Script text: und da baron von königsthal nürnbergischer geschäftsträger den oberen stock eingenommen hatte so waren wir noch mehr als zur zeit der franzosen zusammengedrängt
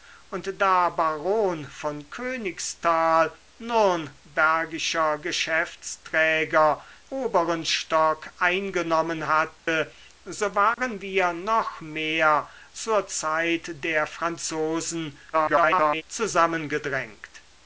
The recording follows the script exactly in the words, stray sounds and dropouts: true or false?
false